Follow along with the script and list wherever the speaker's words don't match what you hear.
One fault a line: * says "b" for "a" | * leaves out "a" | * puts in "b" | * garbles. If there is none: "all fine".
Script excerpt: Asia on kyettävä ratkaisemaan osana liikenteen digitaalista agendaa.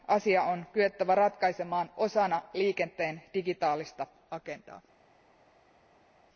all fine